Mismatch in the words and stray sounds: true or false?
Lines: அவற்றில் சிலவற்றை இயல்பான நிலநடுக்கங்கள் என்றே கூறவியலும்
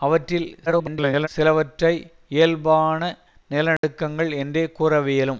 true